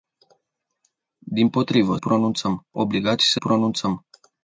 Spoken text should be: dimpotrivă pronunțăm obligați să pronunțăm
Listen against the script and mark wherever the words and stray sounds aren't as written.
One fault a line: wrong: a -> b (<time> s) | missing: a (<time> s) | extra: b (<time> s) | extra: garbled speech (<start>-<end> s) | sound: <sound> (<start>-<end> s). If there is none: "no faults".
no faults